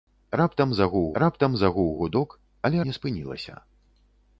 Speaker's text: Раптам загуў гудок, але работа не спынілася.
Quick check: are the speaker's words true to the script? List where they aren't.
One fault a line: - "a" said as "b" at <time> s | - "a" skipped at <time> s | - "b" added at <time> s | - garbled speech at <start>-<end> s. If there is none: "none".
- "раптам загуў" added at 1.2 s
- "работа" skipped at 2.8 s